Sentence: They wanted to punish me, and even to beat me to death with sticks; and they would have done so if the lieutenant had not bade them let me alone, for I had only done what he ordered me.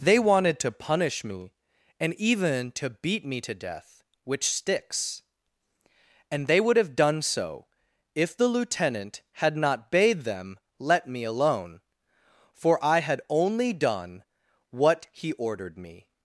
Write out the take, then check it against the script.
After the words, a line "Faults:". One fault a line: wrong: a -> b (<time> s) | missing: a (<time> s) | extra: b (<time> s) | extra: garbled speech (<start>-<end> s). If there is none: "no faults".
They wanted to punish me, and even to beat me to death which sticks; and they would have done so if the lieutenant had not bade them let me alone, for I had only done what he ordered me.
Faults:
wrong: with -> which (4.2 s)